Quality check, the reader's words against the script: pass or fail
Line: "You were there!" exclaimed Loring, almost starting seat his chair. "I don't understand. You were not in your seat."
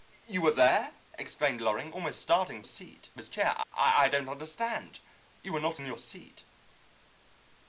pass